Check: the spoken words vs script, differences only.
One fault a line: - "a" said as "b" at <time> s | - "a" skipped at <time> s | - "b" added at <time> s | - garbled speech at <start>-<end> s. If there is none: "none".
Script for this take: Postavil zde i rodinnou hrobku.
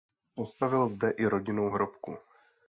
none